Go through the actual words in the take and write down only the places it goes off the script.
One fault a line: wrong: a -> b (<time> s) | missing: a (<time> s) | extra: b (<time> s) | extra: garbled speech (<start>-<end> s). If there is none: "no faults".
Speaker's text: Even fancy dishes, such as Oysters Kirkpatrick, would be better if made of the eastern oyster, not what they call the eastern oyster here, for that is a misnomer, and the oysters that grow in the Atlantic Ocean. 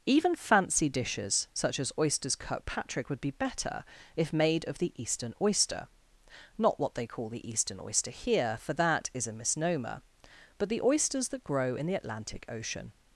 wrong: and -> but (10.6 s)